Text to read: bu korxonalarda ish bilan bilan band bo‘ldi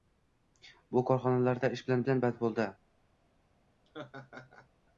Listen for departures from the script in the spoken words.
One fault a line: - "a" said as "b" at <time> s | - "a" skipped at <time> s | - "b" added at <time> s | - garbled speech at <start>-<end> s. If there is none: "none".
none